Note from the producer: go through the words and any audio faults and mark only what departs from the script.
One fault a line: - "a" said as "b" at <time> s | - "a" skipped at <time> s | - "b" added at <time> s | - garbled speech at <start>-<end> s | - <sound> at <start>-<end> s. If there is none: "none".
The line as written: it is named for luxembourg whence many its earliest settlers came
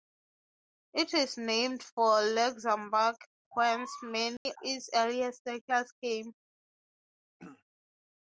- dropout at 4.4-4.5 s
- throat clearing at 7.4-7.6 s